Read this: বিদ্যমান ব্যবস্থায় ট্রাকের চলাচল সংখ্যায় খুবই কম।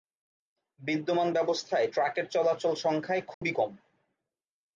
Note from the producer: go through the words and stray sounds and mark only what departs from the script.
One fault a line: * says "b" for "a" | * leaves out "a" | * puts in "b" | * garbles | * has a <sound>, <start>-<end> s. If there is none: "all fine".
* has a dropout, 3.3-3.4 s